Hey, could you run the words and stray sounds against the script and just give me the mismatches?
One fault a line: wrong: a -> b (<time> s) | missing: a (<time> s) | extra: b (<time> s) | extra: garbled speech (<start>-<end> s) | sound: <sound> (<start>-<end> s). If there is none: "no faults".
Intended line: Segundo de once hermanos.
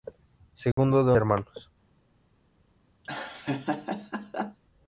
sound: dropout (0.7-0.8 s)
missing: once (1.1 s)
sound: laugh (3.0-4.6 s)